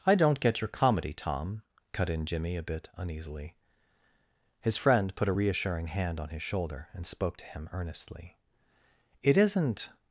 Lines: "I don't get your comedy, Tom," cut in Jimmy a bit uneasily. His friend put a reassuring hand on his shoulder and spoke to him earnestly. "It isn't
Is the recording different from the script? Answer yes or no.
no